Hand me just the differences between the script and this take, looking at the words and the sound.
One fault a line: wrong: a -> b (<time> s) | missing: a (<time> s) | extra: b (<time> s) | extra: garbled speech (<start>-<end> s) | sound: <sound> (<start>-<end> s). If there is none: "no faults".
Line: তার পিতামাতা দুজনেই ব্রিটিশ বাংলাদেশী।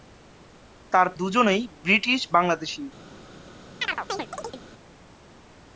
missing: পিতামাতা (1.1 s)
sound: chirp (3.8-4.6 s)